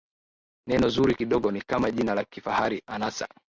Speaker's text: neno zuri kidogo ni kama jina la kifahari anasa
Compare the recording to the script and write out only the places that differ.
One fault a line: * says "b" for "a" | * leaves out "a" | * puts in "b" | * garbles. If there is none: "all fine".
all fine